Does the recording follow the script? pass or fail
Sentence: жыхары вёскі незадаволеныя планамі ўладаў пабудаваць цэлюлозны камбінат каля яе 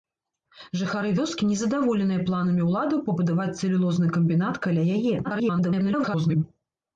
fail